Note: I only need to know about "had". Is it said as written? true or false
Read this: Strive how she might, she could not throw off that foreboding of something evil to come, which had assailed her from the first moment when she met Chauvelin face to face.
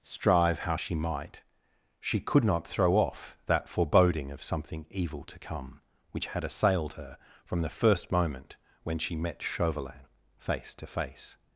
true